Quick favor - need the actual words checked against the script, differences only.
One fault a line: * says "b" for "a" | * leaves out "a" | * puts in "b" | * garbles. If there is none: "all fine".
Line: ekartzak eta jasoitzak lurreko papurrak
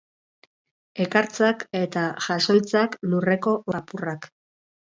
all fine